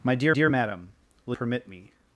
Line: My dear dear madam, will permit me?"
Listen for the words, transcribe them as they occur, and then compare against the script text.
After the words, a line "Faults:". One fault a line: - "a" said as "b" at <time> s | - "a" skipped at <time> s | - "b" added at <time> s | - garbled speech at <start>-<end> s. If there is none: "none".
My dear dear madam, will permit me?"
Faults:
none